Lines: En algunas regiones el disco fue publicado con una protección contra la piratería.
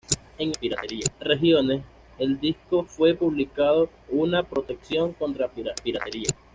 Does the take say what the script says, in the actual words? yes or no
no